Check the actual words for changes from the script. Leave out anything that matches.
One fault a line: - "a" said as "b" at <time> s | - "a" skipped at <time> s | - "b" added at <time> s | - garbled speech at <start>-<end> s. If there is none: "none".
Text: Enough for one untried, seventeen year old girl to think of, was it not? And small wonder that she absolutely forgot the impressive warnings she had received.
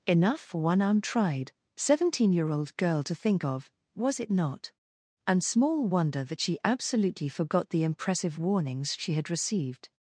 none